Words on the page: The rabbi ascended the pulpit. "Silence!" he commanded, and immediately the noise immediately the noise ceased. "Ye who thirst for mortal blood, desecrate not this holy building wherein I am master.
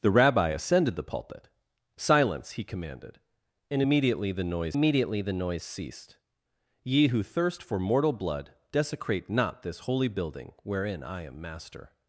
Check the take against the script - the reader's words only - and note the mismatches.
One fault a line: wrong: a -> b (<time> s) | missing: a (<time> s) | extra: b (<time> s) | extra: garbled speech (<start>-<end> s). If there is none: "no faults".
no faults